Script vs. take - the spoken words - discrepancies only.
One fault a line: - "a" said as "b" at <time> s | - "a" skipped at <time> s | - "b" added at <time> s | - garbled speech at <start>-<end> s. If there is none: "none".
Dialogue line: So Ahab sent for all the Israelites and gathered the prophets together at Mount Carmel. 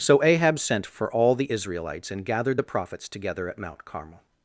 none